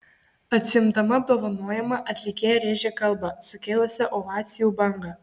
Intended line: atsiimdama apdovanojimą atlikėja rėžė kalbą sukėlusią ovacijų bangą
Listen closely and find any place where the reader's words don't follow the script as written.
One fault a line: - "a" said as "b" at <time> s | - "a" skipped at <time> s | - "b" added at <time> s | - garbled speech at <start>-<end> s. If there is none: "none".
none